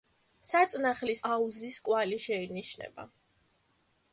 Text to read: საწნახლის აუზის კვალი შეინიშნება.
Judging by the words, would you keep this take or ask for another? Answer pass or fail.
pass